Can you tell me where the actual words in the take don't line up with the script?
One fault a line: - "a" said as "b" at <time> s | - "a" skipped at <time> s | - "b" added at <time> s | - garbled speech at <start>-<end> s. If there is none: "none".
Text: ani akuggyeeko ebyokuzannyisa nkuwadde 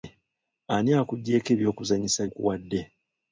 none